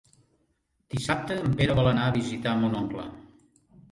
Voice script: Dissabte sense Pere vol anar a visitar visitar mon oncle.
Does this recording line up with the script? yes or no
no